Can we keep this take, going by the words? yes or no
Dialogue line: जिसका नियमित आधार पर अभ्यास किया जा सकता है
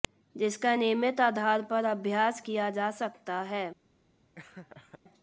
yes